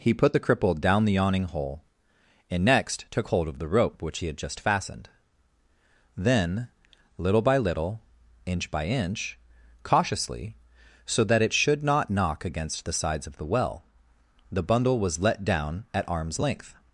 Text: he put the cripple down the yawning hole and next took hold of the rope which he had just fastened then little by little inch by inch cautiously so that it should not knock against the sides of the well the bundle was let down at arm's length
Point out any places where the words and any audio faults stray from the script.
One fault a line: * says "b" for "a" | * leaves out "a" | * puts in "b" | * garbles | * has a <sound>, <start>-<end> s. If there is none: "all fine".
all fine